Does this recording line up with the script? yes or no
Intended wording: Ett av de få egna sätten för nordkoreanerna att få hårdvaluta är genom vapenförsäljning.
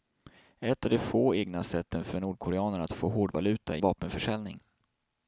no